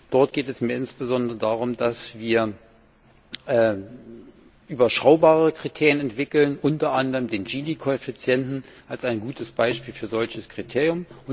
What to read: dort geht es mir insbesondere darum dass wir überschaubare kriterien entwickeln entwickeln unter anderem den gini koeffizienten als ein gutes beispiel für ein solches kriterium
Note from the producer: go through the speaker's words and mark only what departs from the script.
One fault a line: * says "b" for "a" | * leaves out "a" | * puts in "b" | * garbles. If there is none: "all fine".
* leaves out "entwickeln"